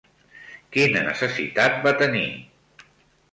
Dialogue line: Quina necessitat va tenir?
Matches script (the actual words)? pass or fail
pass